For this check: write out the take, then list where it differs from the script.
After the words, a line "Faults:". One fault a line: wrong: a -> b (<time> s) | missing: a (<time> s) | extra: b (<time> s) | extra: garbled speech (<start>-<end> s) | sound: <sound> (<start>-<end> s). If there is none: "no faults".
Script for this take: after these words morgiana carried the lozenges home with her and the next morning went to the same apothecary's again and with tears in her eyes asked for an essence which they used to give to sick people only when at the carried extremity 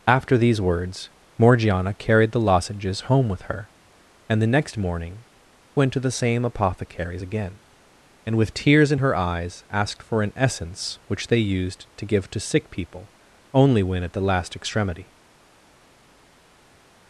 after these words morgiana carried the lozenges home with her and the next morning went to the same apothecary's again and with tears in her eyes asked for an essence which they used to give to sick people only when at the last extremity
Faults:
wrong: carried -> last (14.2 s)